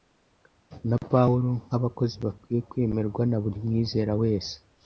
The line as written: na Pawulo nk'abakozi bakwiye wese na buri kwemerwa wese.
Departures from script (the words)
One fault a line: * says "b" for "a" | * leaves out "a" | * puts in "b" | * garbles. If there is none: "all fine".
* says "kwemerwa" for "wese"
* says "mwizera" for "kwemerwa"